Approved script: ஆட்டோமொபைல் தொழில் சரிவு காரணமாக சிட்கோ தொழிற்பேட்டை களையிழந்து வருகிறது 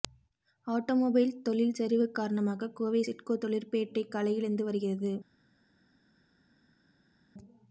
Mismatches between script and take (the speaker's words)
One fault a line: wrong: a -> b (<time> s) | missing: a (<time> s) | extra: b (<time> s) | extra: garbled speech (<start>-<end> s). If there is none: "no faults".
extra: கோவை (2.7 s)